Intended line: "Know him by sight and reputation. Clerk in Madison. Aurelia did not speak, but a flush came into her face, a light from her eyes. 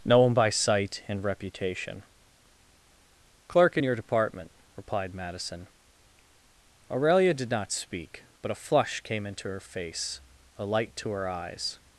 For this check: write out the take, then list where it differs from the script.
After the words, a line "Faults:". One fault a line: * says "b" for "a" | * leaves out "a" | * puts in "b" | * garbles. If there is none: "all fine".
"Know him by sight and reputation. Clerk in your department," replied Madison. Aurelia did not speak, but a flush came into her face, a light to her eyes.
Faults:
* puts in "your department replied"
* says "to" for "from"